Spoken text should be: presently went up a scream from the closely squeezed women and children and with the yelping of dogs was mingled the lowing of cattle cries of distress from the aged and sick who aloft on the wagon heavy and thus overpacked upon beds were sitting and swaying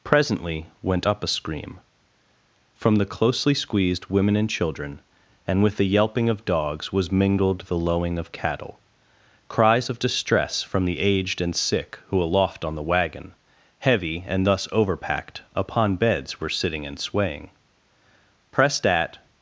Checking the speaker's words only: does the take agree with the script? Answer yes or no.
no